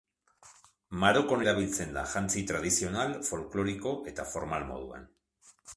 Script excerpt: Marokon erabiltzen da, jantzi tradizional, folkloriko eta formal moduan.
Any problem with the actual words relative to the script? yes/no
no